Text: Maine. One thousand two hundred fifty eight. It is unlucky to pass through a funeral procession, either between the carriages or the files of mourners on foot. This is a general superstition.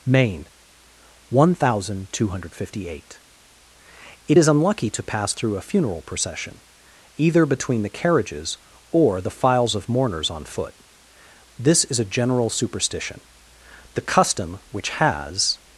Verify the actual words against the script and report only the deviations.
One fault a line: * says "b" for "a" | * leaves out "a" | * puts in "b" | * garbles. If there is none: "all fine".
* puts in "The custom which has"